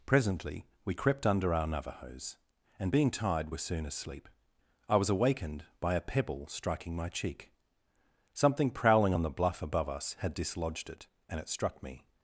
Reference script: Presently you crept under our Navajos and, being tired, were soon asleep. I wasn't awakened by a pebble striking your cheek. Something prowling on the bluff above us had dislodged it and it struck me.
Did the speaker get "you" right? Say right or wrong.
wrong